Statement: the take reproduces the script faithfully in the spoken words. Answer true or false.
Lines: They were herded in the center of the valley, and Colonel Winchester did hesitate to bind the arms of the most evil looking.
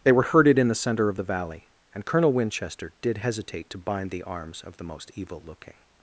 true